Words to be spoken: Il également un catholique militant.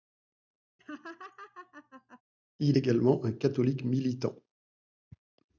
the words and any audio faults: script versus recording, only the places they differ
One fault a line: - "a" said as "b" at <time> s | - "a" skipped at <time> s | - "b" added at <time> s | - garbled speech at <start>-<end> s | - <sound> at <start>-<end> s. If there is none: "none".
- laugh at 0.8-2.2 s